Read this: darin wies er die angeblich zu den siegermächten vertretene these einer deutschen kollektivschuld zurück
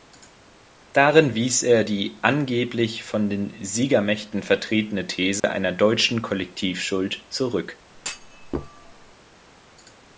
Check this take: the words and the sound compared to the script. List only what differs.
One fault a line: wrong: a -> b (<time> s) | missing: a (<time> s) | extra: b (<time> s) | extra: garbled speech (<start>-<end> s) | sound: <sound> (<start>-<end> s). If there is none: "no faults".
wrong: zu -> von (3.0 s)
sound: dropout (5.4-5.4 s)
sound: thud (7.9-9.1 s)